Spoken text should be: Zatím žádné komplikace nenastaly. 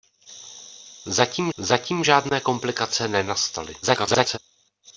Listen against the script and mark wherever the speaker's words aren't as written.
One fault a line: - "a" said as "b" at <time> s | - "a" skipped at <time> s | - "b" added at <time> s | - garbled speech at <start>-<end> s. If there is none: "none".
- "zatím" added at 1.6 s
- garbled speech at 3.8-4.4 s